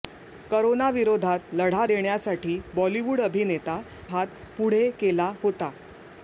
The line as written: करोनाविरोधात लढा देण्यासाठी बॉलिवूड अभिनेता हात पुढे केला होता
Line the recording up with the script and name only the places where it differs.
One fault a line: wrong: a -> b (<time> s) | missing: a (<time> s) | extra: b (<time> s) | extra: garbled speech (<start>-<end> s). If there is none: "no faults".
no faults